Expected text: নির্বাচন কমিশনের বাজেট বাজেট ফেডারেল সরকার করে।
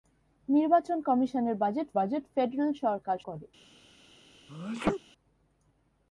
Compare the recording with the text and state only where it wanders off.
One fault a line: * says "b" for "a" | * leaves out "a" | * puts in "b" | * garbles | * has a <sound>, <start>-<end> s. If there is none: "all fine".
* has a sneeze, 4.5-5.0 s